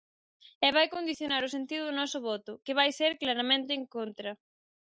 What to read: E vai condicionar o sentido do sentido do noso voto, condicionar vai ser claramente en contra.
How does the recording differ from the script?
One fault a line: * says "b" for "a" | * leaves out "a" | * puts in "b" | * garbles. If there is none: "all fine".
* leaves out "sentido do"
* says "que" for "condicionar"